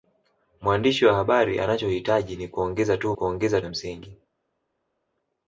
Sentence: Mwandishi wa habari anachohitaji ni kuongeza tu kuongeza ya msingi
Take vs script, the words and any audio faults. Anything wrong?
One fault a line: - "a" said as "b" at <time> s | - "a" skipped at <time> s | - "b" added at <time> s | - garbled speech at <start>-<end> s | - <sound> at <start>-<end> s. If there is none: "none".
none